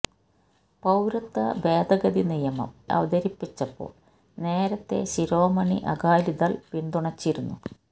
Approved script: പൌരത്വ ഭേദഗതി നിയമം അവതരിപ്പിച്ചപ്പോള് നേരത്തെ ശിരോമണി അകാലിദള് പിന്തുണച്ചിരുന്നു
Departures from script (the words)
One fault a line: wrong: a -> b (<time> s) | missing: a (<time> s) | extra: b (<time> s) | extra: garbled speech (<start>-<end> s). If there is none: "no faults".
no faults